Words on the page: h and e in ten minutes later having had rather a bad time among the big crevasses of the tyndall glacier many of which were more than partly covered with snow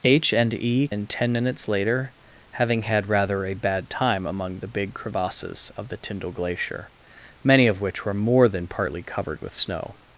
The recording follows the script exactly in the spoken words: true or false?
true